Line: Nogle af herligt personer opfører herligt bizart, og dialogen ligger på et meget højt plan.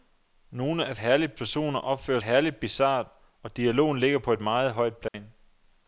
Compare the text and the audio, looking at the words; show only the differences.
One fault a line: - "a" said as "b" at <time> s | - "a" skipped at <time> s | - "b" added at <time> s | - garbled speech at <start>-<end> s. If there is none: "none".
none